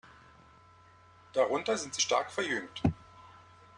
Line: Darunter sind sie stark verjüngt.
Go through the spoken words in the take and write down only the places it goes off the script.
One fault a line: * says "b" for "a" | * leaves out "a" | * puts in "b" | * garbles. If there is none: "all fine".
all fine